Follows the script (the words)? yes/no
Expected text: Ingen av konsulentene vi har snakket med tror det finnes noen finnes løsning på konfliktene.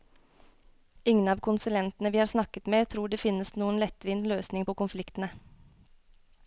no